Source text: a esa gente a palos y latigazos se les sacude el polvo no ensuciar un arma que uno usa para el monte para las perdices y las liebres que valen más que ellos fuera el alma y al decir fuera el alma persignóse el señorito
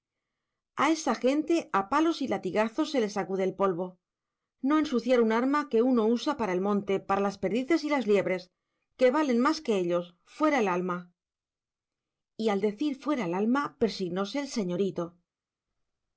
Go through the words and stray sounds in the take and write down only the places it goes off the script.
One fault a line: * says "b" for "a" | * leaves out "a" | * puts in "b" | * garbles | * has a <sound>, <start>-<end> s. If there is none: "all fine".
all fine